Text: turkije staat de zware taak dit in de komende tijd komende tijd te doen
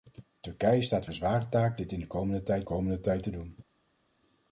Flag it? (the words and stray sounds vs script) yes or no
no